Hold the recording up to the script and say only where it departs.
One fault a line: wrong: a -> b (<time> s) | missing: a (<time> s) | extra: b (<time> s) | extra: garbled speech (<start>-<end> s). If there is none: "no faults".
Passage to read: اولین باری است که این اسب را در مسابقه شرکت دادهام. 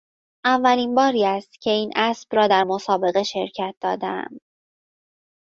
no faults